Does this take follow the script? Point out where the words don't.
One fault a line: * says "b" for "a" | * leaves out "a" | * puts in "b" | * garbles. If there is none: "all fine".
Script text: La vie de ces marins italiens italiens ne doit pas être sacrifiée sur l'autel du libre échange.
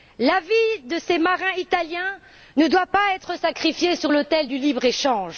* leaves out "italiens"